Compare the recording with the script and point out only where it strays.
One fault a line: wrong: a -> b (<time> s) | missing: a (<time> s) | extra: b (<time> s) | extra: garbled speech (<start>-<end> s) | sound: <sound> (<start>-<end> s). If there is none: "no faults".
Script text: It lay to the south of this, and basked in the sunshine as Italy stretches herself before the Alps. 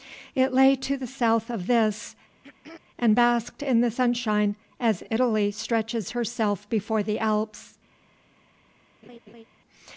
sound: throat clearing (2.3-2.8 s)
sound: laugh (9.0-9.4 s)